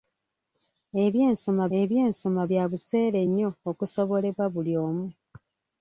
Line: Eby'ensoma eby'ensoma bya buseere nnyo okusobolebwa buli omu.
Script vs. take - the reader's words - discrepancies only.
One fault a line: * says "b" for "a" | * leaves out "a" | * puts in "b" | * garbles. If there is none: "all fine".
all fine